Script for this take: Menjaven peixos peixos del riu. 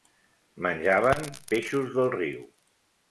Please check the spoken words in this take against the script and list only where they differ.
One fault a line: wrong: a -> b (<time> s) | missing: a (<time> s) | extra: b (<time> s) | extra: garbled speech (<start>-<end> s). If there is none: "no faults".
missing: peixos (1.9 s)